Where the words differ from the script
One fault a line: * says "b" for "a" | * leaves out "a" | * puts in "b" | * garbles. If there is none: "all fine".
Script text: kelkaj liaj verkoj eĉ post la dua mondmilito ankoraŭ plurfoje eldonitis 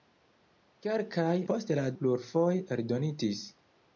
* leaves out "liaj verkoj eĉ"
* leaves out "dua mondmilito ankoraŭ"